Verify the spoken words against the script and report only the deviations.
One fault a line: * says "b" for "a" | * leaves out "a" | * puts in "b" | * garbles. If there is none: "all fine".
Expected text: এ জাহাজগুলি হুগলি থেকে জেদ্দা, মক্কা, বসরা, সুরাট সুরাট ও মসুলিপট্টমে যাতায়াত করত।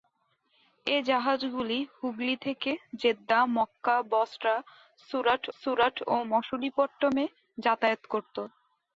all fine